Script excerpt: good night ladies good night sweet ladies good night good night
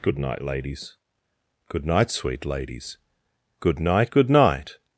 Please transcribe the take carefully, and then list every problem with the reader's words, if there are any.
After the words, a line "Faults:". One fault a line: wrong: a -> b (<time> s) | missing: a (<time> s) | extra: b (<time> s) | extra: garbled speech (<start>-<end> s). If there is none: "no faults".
good night ladies good night sweet ladies good night good night
Faults:
no faults